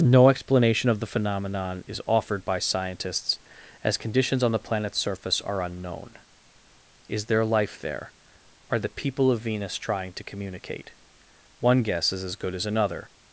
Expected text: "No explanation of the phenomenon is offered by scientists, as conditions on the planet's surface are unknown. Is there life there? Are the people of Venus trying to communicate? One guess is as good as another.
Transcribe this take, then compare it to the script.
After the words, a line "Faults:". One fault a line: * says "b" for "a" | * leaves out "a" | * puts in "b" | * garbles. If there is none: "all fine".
"No explanation of the phenomenon is offered by scientists, as conditions on the planet's surface are unknown. Is there life there? Are the people of Venus trying to communicate? One guess is as good as another.
Faults:
all fine